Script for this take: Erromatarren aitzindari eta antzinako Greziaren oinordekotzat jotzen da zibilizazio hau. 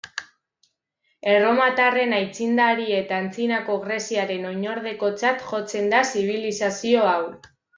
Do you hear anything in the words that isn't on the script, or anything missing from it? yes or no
no